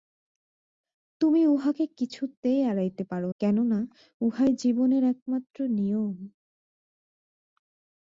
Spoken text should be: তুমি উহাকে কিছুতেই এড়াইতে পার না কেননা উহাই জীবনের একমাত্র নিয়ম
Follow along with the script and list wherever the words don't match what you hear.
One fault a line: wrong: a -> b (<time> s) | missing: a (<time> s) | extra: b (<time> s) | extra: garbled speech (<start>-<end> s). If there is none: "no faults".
missing: না (3.2 s)